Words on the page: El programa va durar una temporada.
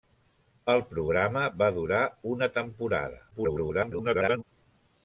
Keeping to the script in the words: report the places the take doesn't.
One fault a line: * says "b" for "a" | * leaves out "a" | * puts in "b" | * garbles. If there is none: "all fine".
* garbles